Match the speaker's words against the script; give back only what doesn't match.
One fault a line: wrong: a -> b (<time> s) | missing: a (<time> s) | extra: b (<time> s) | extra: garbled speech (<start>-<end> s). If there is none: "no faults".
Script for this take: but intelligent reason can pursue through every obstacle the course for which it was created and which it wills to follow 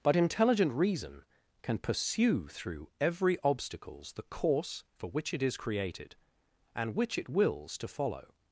wrong: obstacle -> obstacles (3.4 s)
wrong: was -> is (5.4 s)